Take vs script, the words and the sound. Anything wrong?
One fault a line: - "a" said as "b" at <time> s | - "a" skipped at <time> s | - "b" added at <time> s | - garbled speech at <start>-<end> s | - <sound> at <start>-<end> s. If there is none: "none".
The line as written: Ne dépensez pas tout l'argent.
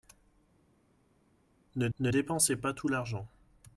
- "ne" added at 2.0 s